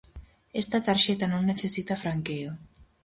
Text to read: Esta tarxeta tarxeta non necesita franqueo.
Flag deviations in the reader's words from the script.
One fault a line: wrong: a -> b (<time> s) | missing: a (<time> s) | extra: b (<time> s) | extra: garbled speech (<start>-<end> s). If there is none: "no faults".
missing: tarxeta (1.2 s)